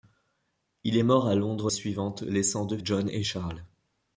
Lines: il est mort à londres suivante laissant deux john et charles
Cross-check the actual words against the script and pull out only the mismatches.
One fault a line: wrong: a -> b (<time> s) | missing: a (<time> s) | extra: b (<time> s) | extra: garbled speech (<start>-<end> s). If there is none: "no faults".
no faults